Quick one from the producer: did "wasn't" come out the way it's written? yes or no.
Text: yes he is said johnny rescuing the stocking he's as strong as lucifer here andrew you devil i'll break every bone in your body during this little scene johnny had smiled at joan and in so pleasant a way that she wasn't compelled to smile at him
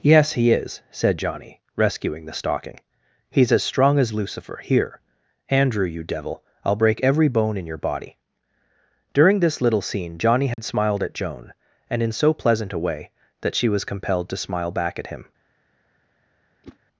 no